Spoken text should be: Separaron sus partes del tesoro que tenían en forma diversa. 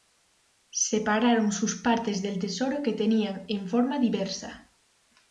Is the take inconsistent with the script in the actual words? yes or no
no